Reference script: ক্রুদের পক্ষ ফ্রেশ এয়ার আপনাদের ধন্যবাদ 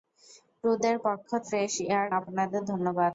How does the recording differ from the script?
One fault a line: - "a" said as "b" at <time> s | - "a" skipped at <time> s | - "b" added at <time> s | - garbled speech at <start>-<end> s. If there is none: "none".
none